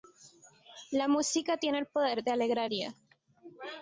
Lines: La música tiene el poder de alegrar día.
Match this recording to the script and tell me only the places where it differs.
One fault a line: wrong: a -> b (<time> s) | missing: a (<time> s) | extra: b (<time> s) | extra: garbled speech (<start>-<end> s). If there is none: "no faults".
no faults